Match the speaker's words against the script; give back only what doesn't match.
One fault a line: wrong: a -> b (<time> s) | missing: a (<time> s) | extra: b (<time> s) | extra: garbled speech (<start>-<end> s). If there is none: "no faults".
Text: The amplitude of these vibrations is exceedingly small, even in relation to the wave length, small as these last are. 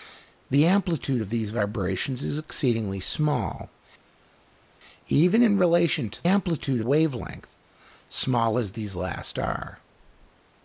wrong: the -> amplitude (6.2 s)